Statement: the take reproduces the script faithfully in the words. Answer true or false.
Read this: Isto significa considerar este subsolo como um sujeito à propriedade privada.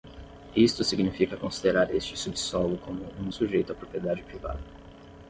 true